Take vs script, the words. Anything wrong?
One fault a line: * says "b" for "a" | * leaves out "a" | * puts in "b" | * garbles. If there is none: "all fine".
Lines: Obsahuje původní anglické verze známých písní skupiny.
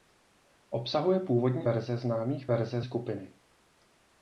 * leaves out "anglické"
* says "verze" for "písní"